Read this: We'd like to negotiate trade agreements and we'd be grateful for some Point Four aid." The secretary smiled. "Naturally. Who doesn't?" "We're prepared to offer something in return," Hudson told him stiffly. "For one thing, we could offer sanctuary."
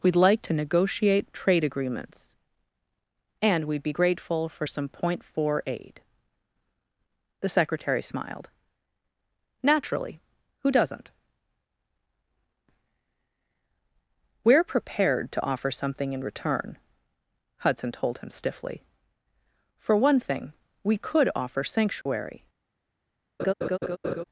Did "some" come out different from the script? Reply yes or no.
no